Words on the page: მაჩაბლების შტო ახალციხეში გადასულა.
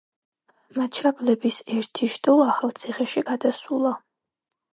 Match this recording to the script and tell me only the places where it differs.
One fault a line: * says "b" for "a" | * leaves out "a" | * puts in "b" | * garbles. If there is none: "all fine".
* puts in "ერთი"